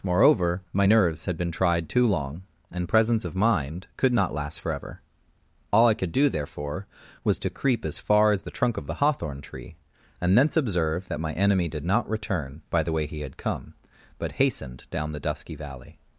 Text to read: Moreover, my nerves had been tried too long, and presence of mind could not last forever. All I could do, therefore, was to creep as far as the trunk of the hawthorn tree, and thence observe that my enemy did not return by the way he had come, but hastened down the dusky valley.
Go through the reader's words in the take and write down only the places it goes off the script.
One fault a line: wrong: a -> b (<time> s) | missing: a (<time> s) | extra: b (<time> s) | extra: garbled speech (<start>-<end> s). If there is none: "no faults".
no faults